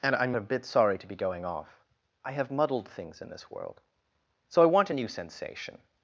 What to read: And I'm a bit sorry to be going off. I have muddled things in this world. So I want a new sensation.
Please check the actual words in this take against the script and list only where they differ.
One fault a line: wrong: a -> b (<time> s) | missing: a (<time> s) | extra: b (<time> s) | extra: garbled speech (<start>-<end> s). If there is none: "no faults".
no faults